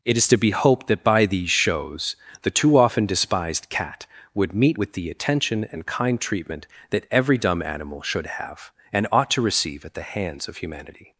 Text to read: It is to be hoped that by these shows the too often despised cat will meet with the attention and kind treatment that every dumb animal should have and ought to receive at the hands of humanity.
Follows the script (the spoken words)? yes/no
no